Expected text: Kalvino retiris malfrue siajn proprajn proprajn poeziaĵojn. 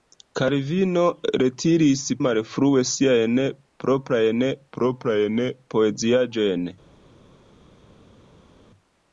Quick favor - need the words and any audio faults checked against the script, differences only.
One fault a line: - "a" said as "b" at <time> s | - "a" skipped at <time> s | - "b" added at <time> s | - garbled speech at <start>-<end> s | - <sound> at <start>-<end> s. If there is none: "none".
none